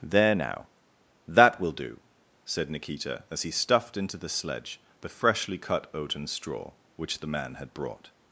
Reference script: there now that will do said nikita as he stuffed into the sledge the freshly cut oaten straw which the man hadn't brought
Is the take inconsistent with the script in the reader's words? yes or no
yes